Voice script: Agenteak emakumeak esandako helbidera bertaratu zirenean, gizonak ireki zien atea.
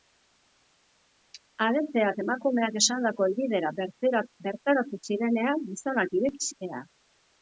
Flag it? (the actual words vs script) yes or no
yes